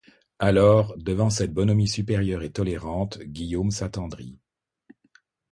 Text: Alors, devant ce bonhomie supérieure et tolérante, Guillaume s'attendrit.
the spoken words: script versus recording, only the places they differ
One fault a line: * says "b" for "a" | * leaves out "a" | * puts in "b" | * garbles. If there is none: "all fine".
* says "cette" for "ce"